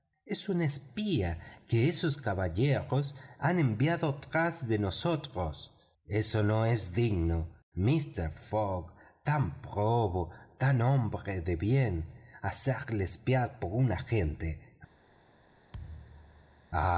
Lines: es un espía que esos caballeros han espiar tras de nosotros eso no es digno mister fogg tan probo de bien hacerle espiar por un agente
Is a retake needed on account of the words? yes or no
yes